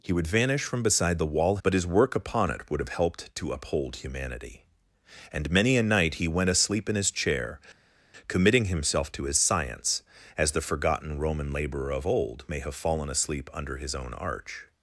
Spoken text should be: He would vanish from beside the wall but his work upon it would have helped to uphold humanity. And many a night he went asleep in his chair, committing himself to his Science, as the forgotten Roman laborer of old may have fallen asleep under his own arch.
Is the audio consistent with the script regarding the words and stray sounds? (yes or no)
yes